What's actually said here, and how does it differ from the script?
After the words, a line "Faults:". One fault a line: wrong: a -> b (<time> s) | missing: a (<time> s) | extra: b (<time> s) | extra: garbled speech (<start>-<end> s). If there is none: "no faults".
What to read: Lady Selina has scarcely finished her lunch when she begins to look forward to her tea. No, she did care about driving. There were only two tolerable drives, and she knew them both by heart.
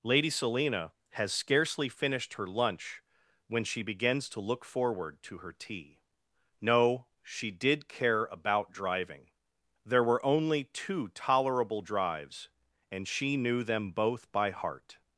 Lady Selina has scarcely finished her lunch when she begins to look forward to her tea. No, she did care about driving. There were only two tolerable drives, and she knew them both by heart.
Faults:
no faults